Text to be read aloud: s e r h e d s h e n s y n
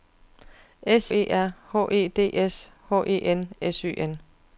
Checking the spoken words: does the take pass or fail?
pass